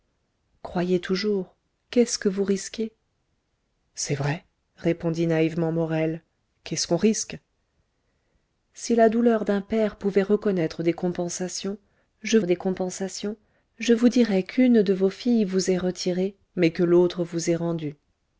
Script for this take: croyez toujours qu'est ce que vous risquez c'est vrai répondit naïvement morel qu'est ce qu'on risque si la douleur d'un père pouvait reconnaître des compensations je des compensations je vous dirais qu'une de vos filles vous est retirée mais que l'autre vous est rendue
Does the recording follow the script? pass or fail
pass